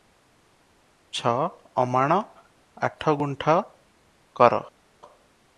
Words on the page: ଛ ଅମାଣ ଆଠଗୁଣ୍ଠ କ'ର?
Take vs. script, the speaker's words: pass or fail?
pass